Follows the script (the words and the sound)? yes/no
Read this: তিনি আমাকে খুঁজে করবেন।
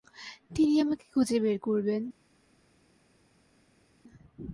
no